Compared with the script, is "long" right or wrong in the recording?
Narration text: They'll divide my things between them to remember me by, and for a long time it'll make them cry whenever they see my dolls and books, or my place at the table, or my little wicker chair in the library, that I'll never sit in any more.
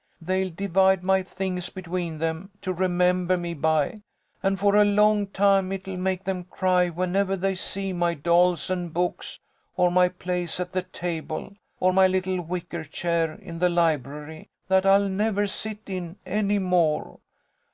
right